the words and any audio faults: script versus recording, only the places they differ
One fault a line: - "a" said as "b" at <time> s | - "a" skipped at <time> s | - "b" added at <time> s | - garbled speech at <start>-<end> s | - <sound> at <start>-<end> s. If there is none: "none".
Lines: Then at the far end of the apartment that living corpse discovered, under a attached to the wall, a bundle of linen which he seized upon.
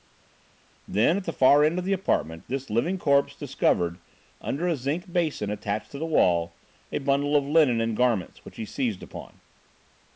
- "that" said as "this" at 2.5 s
- "zinc basin" added at 4.8 s
- "and garments" added at 7.8 s